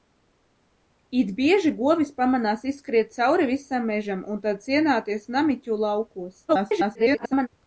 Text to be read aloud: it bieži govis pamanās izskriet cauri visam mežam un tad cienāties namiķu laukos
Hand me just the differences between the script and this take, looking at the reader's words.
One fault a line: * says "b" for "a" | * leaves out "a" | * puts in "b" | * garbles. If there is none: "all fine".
* garbles